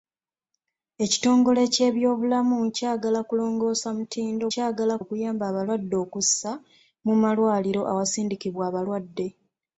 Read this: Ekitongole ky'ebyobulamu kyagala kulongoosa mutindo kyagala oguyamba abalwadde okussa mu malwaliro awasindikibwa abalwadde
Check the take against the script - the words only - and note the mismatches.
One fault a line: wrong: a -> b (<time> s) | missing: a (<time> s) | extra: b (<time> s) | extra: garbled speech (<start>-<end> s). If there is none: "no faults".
no faults